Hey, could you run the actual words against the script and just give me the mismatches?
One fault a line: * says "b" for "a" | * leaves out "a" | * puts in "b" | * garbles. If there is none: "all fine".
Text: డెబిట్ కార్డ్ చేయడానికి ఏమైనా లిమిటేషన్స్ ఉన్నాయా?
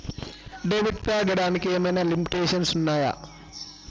all fine